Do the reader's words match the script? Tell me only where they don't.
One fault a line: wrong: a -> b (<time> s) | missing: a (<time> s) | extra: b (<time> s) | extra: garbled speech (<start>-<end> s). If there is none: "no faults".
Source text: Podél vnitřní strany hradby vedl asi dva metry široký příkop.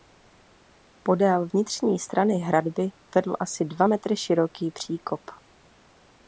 no faults